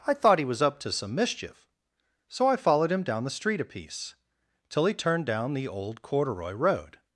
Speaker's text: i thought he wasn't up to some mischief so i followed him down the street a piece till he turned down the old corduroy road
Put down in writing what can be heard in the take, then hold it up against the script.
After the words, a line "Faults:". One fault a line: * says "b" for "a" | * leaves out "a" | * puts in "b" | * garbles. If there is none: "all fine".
i thought he was up to some mischief so i followed him down the street a piece till he turned down the old corduroy road
Faults:
* says "was" for "wasn't"